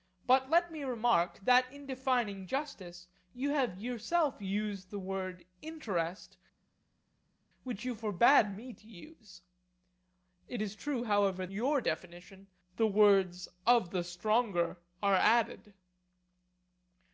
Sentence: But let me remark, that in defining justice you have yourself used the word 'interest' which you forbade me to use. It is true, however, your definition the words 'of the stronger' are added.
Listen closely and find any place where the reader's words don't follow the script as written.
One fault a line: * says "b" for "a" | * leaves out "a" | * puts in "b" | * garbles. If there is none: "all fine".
all fine